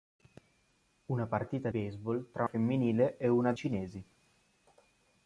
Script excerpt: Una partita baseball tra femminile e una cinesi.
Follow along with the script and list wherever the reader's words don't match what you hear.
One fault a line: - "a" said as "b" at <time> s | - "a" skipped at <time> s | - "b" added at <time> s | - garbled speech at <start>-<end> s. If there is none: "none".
none